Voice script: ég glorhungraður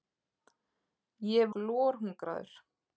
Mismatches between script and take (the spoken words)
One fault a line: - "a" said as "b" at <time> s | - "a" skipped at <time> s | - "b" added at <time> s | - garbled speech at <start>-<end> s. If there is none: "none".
none